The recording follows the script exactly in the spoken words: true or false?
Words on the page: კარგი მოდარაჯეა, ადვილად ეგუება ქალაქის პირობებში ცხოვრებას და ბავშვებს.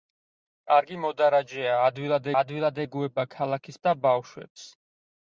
false